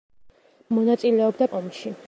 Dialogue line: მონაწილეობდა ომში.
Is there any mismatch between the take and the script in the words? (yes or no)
no